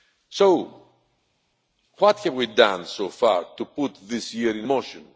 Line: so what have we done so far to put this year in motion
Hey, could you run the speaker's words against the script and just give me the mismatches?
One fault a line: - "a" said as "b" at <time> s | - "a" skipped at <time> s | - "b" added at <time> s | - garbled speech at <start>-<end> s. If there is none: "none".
none